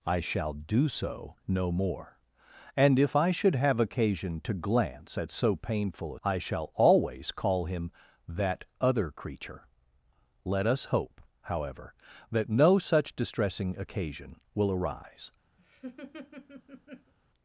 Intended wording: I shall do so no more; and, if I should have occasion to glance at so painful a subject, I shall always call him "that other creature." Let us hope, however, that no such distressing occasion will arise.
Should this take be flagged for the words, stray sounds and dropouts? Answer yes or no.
yes